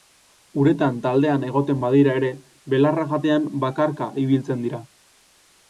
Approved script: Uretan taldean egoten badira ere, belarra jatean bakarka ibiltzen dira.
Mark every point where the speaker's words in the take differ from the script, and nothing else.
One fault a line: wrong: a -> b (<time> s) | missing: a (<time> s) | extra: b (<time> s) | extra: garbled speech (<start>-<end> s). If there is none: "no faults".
no faults